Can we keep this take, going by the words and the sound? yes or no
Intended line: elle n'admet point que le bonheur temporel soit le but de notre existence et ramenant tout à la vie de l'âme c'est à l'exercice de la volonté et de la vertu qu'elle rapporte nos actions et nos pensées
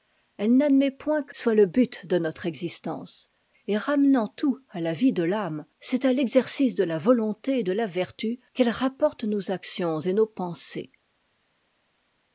no